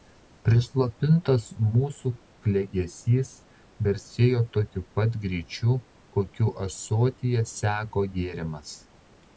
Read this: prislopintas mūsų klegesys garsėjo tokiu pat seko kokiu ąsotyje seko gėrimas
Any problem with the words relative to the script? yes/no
yes